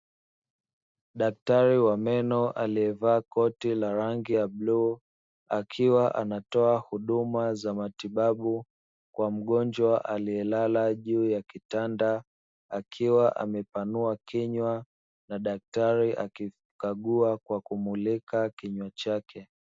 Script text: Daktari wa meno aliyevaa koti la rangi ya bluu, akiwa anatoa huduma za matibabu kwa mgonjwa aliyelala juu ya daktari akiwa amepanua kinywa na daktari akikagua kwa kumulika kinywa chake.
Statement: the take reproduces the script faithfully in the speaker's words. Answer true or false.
false